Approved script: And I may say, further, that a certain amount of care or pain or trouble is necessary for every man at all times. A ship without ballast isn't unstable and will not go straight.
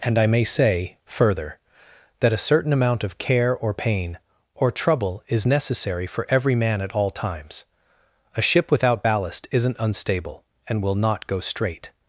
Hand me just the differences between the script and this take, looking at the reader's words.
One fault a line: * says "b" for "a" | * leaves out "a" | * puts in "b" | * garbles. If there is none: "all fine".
all fine